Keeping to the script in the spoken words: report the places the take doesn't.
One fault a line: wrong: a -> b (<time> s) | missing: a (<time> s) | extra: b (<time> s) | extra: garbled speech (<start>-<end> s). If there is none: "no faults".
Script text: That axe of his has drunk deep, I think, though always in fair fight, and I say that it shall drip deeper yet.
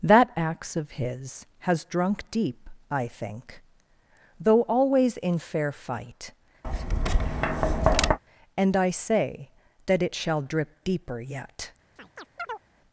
no faults